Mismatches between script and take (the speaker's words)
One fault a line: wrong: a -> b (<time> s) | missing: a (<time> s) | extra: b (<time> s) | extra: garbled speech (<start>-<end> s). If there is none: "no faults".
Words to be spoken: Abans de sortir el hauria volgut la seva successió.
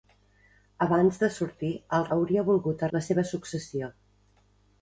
no faults